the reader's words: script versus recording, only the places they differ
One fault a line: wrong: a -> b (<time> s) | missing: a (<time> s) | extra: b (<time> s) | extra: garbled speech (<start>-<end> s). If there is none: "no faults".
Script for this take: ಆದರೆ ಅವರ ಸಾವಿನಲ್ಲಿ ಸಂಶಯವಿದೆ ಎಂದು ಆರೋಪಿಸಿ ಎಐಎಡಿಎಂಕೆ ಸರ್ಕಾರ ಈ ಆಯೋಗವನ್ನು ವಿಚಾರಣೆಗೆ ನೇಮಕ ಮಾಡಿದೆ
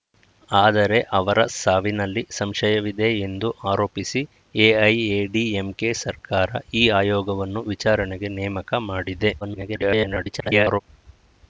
extra: garbled speech (9.4-10.8 s)